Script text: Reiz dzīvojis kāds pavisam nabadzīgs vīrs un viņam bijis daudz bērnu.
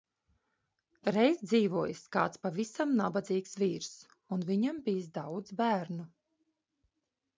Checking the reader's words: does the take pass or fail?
pass